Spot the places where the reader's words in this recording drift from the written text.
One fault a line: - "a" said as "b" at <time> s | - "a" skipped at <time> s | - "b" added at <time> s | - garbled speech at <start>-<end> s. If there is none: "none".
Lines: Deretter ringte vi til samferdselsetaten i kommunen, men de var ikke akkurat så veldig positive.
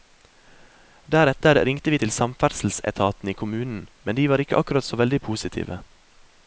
none